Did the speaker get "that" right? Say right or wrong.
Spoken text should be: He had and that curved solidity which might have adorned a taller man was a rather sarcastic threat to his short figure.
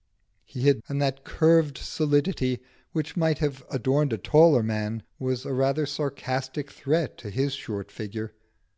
right